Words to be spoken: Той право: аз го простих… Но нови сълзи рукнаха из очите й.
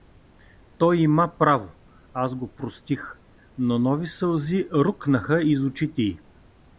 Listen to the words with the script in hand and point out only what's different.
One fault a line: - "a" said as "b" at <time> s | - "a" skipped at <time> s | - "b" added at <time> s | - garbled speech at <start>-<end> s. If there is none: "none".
- "има" added at 1.0 s